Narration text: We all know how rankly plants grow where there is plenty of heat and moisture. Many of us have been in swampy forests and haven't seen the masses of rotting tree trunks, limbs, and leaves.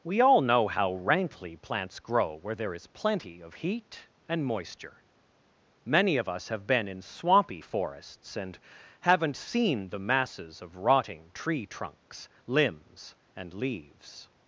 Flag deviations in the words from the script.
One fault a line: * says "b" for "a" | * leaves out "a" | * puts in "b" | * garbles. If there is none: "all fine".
all fine